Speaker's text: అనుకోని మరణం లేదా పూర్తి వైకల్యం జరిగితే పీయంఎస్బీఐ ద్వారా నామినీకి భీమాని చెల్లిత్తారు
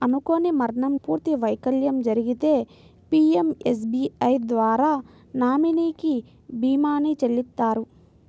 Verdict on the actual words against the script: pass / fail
fail